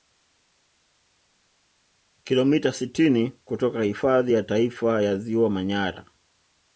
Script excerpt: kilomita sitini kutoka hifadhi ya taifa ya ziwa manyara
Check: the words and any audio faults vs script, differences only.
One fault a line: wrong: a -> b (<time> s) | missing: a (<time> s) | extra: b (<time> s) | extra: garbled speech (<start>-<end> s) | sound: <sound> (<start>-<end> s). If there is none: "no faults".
no faults